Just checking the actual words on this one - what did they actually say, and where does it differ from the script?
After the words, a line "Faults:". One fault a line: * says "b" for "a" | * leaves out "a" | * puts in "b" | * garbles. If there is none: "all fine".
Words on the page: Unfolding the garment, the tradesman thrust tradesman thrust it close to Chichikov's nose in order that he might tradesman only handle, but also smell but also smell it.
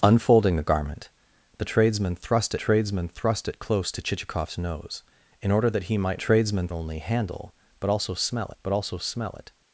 Unfolding the garment, the tradesman thrust tradesman thrust it close to Chichikov's nose in order that he might tradesman only handle, but also smell but also smell it.
Faults:
all fine